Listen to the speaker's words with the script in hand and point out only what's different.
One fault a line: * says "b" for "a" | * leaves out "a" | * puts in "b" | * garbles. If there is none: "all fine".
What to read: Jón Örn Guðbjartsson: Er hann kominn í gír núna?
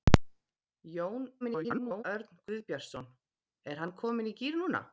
* garbles